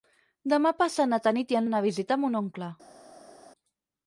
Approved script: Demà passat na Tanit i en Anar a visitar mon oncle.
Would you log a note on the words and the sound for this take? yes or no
no